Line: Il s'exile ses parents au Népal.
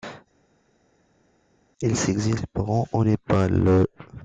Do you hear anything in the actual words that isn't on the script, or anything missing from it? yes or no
no